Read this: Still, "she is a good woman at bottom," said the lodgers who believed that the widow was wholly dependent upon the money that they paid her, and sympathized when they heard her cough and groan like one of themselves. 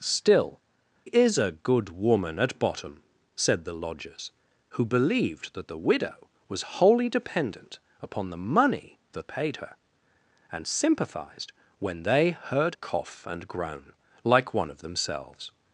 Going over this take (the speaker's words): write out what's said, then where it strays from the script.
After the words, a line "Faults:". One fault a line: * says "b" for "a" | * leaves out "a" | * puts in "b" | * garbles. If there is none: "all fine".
Still, "is a good woman at bottom," said the lodgers who believed that the widow was wholly dependent upon the money that paid her, and sympathized when they heard cough and groan like one of themselves.
Faults:
* leaves out "she"
* leaves out "they"
* leaves out "her"